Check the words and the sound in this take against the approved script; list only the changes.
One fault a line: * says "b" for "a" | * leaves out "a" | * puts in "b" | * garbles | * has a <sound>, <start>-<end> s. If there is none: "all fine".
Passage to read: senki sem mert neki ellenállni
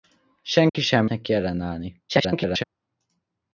* has a dropout, 0.7-0.7 s
* leaves out "mert"
* garbles